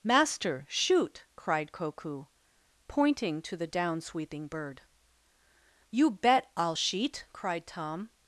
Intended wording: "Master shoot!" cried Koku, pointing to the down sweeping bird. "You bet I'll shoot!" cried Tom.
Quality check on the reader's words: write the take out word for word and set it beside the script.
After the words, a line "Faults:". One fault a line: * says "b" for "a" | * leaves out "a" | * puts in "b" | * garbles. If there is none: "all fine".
"Master shoot!" cried Koku, pointing to the down sweeping bird. "You bet I'll sheet!" cried Tom.
Faults:
* says "sheet" for "shoot"